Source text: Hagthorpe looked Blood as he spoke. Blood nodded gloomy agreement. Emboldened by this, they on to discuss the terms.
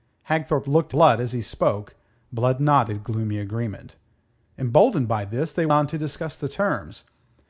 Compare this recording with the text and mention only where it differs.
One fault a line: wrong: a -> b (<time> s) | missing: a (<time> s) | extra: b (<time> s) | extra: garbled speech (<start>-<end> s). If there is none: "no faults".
no faults